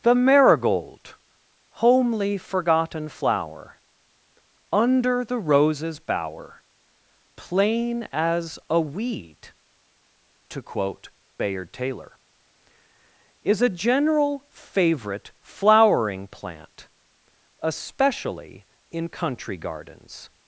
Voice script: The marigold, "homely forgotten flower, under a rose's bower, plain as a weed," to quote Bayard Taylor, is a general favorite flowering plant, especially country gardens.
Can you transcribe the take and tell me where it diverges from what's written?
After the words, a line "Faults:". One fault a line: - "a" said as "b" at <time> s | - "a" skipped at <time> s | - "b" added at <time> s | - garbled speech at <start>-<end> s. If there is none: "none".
The marigold, "homely forgotten flower, under the rose's bower, plain as a weed," to quote Bayard Taylor, is a general favorite flowering plant, especially in country gardens.
Faults:
- "a" said as "the" at 5.2 s
- "in" added at 18.9 s